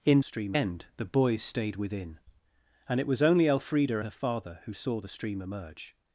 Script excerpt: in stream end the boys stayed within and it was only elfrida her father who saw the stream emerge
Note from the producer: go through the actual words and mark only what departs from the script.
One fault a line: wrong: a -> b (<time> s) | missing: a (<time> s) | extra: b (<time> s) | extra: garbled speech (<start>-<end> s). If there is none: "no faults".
no faults